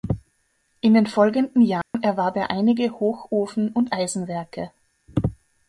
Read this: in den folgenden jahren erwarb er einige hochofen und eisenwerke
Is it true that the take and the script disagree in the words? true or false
false